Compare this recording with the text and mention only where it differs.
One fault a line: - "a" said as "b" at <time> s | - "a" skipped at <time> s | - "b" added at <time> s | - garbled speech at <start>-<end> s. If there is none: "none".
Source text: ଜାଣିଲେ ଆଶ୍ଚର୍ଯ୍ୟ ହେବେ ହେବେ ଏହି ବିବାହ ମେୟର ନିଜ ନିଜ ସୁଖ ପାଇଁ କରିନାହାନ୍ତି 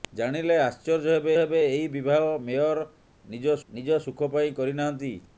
none